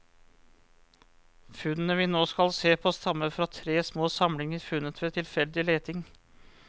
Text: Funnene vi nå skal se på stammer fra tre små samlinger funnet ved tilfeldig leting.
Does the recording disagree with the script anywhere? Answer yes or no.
no